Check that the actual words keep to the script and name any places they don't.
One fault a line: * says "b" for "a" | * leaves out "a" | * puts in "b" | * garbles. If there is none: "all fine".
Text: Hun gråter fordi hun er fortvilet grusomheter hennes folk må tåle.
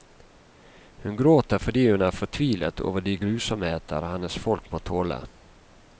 * puts in "over de"